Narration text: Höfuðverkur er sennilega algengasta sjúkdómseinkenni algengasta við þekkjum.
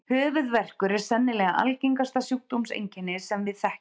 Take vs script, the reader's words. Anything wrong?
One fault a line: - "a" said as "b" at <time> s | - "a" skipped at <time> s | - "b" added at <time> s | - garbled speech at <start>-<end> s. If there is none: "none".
- "algengasta" said as "sem" at 3.2 s